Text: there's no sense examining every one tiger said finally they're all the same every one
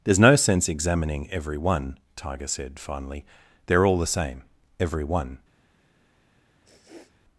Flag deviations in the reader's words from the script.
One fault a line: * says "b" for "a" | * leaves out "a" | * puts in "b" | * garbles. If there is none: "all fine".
all fine